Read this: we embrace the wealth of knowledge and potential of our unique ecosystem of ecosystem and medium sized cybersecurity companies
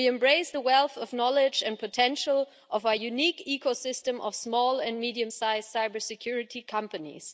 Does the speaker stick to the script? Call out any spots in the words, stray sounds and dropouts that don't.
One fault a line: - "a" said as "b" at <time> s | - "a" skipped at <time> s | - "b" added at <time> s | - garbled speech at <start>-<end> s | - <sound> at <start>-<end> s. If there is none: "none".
- "ecosystem" said as "small" at 4.3 s